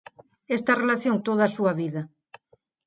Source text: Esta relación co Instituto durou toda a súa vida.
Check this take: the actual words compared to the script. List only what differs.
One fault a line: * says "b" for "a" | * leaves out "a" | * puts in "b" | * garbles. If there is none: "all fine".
* leaves out "co Instituto durou"